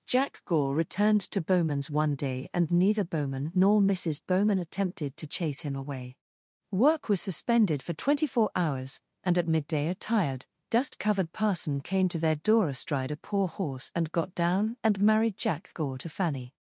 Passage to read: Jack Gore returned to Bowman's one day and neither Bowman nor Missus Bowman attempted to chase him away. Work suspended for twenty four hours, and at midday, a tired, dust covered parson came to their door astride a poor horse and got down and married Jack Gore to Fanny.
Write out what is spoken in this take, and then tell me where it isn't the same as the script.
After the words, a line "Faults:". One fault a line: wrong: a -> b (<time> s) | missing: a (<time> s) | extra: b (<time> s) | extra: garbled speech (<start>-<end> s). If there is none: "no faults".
Jack Gore returned to Bowman's one day and neither Bowman nor Missus Bowman attempted to chase him away. Work was suspended for twenty four hours, and at midday, a tired, dust covered parson came to their door astride a poor horse and got down and married Jack Gore to Fanny.
Faults:
extra: was (7.1 s)